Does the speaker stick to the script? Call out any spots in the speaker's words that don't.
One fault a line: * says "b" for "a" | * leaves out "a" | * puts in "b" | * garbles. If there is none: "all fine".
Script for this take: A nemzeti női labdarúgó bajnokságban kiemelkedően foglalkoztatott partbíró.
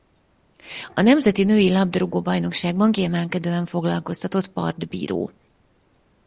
all fine